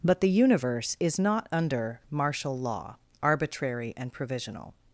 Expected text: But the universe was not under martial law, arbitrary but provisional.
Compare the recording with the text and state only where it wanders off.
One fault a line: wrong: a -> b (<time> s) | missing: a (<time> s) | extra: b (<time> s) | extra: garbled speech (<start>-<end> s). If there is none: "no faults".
wrong: was -> is (1.0 s)
wrong: but -> and (4.0 s)